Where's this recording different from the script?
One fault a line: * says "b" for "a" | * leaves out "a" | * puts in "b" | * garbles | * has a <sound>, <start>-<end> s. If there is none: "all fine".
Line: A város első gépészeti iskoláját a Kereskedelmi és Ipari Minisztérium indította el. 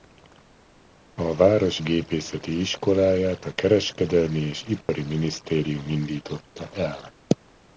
* leaves out "első"
* has a dropout, 4.8-4.9 s